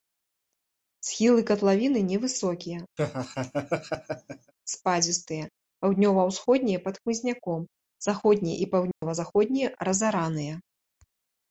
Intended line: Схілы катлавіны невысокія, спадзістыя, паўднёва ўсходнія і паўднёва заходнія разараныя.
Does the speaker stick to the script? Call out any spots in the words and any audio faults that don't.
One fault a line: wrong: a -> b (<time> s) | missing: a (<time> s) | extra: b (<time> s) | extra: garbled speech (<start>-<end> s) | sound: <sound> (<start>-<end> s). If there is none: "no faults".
sound: laugh (3.0-4.5 s)
extra: пад хмызняком заходнія (6.9 s)
sound: dropout (8.9-9.0 s)